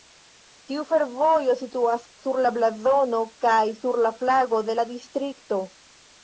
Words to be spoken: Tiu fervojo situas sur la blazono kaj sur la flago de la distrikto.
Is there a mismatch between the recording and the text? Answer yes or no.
no